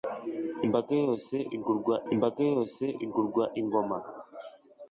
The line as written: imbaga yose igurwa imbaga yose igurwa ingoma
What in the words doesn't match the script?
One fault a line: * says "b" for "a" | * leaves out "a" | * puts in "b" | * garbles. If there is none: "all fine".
all fine